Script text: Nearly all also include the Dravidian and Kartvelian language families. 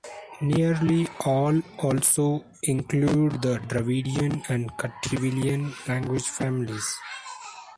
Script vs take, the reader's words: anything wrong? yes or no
no